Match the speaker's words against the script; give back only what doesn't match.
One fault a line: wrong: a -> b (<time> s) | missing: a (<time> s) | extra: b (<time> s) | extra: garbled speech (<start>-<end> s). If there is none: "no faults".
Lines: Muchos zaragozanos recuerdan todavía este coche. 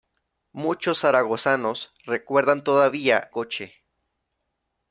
missing: este (3.3 s)